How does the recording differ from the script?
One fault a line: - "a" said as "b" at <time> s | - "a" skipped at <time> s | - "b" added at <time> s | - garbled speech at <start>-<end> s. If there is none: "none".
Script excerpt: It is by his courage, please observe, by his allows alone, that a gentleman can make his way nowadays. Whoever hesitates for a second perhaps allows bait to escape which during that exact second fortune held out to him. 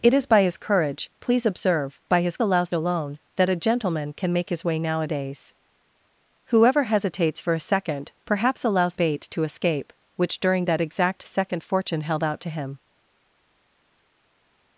none